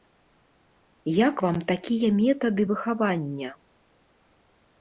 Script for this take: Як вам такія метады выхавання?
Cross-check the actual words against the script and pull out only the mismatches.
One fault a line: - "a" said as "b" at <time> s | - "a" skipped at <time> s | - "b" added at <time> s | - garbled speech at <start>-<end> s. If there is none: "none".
none